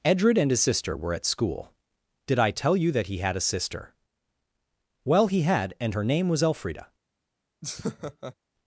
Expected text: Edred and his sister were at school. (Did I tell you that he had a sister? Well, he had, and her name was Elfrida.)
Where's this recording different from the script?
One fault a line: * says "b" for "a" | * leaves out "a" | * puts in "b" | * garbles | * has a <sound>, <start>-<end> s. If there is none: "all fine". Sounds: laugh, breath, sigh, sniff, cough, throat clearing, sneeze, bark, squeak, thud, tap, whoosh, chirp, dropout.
* has a laugh, 7.6-8.4 s